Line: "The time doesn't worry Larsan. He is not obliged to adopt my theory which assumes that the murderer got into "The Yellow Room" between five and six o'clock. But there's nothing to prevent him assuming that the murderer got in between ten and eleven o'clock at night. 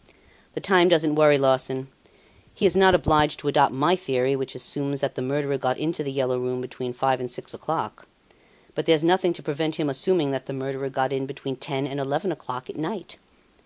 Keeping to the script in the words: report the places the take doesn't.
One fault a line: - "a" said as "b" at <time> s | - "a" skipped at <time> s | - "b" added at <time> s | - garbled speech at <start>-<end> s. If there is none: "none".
none